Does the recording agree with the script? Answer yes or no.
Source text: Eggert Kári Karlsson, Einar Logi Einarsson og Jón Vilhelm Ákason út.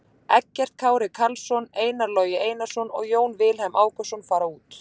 no